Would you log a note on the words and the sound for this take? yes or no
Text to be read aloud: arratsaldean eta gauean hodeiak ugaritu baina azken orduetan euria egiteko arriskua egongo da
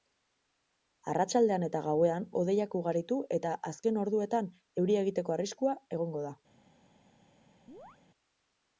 yes